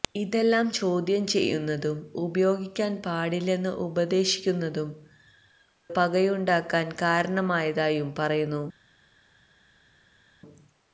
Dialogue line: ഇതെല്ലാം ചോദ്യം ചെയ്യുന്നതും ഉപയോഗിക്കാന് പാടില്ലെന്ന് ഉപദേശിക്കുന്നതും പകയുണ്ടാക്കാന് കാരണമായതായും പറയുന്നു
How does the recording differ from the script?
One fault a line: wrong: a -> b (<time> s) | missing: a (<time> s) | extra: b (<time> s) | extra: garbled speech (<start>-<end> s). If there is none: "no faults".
no faults